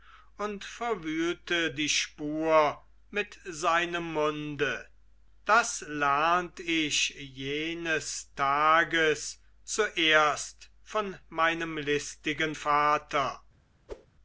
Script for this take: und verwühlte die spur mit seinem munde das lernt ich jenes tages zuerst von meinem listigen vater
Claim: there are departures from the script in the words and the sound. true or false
true